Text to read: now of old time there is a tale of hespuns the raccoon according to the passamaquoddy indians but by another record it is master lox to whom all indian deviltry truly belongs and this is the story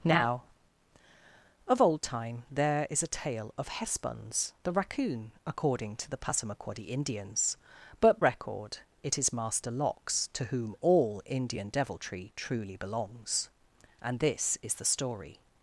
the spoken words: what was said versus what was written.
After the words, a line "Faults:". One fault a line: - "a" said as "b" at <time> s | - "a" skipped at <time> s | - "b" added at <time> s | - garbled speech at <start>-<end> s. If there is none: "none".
now of old time there is a tale of hespuns the raccoon according to the passamaquoddy indians but record it is master lox to whom all indian deviltry truly belongs and this is the story
Faults:
- "by another" skipped at 8.2 s